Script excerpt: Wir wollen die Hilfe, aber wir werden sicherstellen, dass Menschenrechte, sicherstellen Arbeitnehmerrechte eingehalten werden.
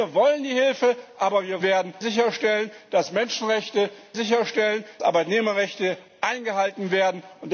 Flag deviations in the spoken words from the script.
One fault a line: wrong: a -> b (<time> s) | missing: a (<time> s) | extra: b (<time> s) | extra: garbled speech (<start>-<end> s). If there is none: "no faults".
no faults